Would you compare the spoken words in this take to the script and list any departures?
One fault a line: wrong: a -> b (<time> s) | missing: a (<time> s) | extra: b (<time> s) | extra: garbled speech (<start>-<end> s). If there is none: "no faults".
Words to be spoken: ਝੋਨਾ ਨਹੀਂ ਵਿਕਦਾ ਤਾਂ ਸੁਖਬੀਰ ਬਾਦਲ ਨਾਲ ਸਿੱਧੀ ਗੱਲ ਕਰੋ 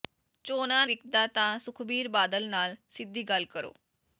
missing: ਨਹੀਂ (0.8 s)